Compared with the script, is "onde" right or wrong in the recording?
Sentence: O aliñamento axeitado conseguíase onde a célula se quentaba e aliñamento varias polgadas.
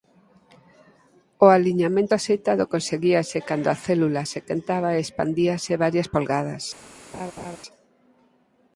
wrong